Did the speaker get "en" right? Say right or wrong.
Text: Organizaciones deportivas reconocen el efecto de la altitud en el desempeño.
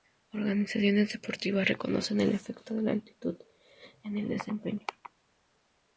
right